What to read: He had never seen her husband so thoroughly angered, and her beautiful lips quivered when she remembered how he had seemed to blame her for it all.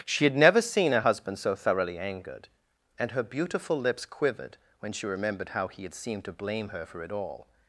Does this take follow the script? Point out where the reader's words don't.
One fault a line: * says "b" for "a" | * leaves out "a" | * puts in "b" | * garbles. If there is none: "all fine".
* says "She" for "He"